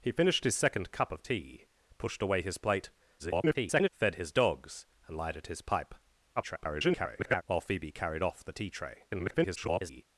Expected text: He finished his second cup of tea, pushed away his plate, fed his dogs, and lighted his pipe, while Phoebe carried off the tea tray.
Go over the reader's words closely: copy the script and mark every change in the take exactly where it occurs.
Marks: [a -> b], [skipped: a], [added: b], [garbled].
He finished his second cup of tea, pushed away his plate, [garbled] fed his dogs, and lighted his pipe, [garbled] while Phoebe carried off the tea tray. [garbled]